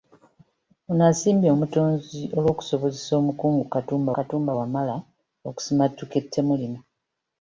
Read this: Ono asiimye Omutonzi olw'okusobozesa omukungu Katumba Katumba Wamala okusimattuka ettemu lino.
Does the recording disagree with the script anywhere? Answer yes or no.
no